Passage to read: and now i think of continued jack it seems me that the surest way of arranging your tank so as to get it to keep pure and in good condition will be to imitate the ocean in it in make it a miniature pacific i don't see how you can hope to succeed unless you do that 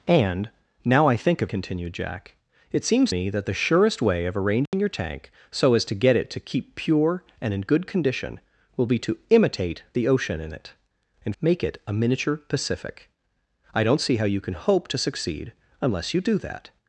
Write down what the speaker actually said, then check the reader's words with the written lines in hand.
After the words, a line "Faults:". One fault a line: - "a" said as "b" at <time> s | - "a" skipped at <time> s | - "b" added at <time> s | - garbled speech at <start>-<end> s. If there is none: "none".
and now i think of continued jack it seems me that the surest way of arranging your tank so as to get it to keep pure and in good condition will be to imitate the ocean in it in make it a miniature pacific i don't see how you can hope to succeed unless you do that
Faults:
none